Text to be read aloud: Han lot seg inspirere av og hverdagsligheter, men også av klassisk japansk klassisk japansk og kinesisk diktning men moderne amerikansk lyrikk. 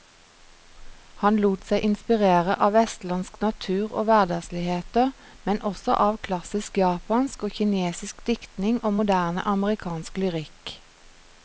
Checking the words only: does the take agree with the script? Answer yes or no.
no